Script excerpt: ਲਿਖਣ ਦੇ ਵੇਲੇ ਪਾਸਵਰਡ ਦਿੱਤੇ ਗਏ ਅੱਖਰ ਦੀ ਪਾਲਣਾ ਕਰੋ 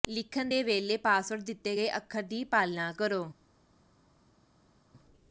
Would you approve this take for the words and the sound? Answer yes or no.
yes